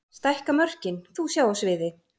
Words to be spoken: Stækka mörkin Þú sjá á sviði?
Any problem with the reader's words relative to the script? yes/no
no